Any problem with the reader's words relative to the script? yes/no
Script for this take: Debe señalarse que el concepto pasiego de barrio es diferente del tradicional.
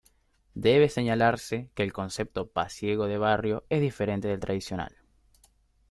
no